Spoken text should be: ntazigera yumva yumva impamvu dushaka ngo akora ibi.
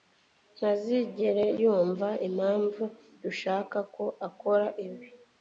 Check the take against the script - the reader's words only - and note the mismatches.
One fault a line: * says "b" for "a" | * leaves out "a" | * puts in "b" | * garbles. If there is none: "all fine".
* leaves out "yumva"
* says "ko" for "ngo"